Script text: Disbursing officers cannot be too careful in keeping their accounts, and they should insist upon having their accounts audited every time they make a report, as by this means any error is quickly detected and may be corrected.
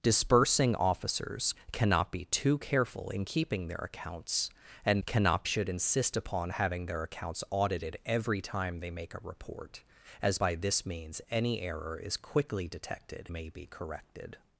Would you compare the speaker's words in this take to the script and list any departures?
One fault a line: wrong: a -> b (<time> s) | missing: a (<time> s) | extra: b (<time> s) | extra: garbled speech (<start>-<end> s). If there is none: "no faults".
wrong: they -> cannot (5.0 s)
missing: and (13.3 s)